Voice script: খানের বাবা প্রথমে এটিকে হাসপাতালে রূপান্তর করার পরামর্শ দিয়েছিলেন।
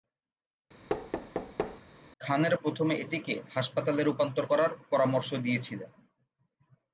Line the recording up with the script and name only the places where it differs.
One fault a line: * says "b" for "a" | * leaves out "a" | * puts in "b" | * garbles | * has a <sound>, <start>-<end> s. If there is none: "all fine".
* has a thud, 0.9-1.8 s
* leaves out "বাবা"